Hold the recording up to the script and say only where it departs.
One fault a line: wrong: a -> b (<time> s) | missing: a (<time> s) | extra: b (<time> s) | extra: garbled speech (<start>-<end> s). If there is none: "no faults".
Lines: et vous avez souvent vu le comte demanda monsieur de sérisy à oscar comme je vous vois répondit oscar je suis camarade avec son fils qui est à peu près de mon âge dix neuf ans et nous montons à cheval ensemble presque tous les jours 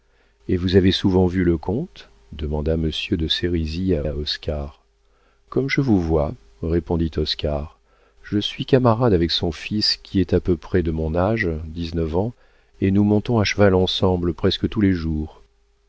extra: à (4.0 s)